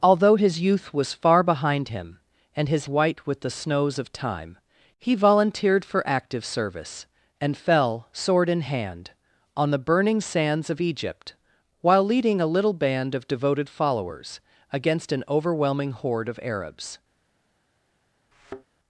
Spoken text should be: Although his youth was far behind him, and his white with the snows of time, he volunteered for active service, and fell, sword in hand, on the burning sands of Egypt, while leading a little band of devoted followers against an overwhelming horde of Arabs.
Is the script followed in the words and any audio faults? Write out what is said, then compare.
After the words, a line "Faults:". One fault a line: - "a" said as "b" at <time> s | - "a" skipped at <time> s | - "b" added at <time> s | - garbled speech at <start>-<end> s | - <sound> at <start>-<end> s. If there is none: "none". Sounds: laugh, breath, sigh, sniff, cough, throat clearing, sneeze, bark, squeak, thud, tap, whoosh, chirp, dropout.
Although his youth was far behind him, and his white with the snows of time, he volunteered for active service, and fell, sword in hand, on the burning sands of Egypt, while leading a little band of devoted followers against an overwhelming horde of Arabs.
Faults:
- thud at 18.3-18.6 s